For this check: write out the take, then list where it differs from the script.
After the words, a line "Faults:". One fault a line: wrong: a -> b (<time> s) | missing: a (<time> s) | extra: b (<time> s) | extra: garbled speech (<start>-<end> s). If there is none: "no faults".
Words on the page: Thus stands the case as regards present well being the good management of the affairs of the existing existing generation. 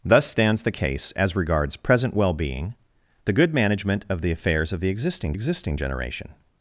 Thus stands the case as regards present well being the good management of the affairs of the existing existing generation.
Faults:
no faults